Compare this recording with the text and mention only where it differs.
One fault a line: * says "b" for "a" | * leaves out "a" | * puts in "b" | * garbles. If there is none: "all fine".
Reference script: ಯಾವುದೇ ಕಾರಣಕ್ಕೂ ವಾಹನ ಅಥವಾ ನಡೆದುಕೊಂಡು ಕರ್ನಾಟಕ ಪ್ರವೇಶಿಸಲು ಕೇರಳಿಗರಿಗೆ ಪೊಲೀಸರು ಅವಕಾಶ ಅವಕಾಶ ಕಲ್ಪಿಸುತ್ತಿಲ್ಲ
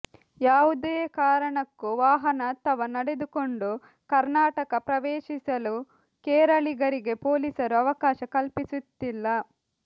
* leaves out "ಅವಕಾಶ"